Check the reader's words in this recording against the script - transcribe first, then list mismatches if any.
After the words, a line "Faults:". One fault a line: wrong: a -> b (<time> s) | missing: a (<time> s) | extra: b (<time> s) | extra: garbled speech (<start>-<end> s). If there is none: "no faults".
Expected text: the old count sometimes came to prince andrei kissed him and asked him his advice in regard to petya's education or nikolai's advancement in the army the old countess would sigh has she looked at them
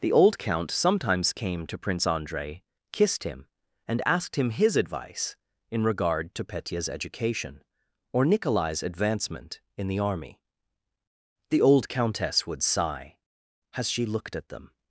the old count sometimes came to prince andrei kissed him and asked him his advice in regard to petya's education or nikolai's advancement in the army the old countess would sigh has she looked at them
Faults:
no faults